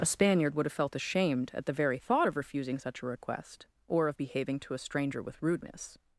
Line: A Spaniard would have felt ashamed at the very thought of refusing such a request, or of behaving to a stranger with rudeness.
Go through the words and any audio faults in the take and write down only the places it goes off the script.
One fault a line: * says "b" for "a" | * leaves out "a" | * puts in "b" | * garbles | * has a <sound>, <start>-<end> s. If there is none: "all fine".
all fine